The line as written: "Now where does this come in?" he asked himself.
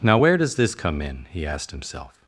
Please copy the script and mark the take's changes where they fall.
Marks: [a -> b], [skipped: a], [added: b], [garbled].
"Now where does this come in?" he asked himself.